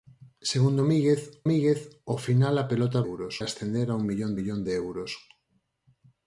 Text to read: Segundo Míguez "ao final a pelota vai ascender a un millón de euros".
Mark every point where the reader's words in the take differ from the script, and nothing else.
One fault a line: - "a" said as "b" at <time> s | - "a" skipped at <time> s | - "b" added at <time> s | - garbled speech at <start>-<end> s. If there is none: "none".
- "Míguez" added at 1.5 s
- "vai" said as "euros" at 3.1 s
- "millón" added at 4.4 s